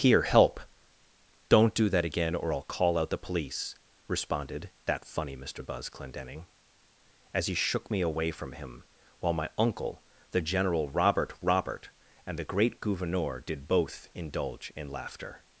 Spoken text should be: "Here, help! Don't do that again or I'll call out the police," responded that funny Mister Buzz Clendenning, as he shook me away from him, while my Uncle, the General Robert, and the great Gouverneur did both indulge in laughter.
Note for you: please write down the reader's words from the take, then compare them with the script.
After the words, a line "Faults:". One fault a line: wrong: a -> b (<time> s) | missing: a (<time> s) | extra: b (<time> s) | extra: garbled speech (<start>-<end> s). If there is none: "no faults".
"Here, help! Don't do that again or I'll call out the police," responded that funny Mister Buzz Clendenning, as he shook me away from him, while my Uncle, the General Robert Robert, and the great Gouverneur did both indulge in laughter.
Faults:
extra: Robert (11.4 s)